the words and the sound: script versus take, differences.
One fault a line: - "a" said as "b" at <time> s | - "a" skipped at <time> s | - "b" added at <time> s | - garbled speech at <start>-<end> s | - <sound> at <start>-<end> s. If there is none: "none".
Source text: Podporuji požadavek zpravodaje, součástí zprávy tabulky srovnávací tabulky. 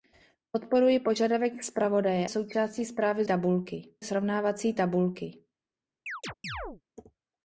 - chirp at 6.1-6.8 s